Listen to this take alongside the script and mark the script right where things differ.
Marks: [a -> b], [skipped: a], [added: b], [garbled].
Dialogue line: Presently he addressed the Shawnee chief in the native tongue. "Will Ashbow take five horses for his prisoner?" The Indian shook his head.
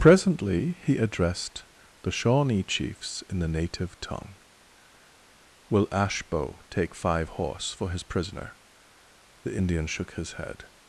Presently he addressed the Shawnee [chief -> chiefs] in the native tongue. "Will Ashbow take five [horses -> horse] for his prisoner?" The Indian shook his head.